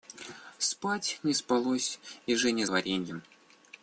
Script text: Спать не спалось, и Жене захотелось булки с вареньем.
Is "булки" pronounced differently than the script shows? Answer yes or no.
yes